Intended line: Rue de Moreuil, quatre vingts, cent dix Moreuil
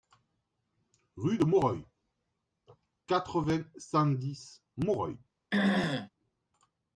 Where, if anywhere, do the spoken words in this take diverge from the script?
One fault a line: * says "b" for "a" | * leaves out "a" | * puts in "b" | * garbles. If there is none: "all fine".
all fine